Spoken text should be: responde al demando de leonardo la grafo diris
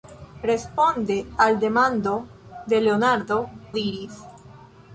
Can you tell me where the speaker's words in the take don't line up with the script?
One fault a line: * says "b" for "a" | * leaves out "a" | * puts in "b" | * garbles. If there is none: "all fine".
* leaves out "la grafo"